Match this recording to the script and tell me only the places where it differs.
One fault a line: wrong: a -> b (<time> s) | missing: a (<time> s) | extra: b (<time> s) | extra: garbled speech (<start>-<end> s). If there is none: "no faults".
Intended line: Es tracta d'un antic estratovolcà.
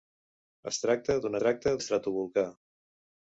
wrong: antic -> tracta (1.4 s)